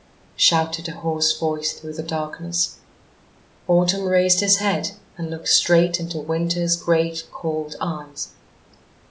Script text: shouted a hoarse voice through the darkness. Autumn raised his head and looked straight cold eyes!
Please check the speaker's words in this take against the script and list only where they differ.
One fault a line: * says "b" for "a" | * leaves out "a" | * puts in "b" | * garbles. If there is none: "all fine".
* puts in "into Winter's great"